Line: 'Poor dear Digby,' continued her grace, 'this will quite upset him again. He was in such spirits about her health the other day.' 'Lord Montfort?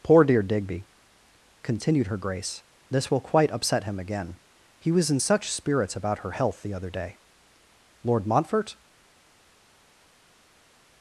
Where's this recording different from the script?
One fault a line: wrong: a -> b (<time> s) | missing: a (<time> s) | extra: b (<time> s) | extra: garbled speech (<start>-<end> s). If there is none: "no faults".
no faults